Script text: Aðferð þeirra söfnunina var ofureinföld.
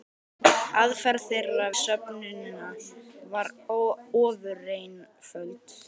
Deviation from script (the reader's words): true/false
false